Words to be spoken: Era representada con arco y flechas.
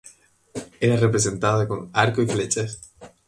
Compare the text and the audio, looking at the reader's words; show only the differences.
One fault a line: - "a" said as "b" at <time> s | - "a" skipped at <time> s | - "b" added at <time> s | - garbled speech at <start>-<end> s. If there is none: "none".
none